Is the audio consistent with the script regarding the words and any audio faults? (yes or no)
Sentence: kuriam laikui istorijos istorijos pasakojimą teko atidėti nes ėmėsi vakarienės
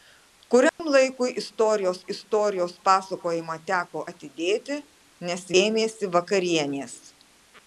no